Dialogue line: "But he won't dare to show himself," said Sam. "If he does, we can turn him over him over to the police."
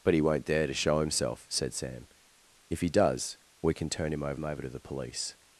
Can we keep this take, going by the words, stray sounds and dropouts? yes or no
yes